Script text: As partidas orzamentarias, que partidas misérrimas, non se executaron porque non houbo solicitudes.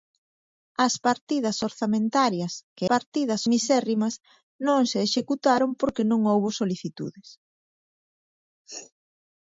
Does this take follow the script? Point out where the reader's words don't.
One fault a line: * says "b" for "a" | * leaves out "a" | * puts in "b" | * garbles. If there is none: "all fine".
all fine